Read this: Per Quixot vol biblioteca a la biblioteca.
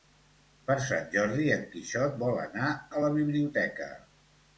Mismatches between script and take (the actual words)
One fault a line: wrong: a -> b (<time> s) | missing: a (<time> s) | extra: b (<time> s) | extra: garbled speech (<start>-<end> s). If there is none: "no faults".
extra: Sant Jordi en (0.8 s)
wrong: biblioteca -> anar (2.5 s)